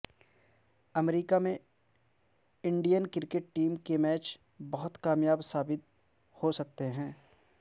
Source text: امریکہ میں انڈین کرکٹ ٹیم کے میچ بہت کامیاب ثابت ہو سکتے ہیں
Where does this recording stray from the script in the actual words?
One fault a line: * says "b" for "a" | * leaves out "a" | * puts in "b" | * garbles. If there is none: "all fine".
all fine